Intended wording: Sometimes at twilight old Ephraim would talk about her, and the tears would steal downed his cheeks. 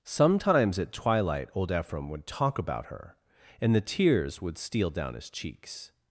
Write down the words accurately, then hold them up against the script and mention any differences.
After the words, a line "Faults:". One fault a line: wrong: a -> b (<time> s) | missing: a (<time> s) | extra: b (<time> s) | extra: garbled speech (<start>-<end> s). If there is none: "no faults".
Sometimes at twilight old Ephraim would talk about her, and the tears would steal down his cheeks.
Faults:
wrong: downed -> down (4.9 s)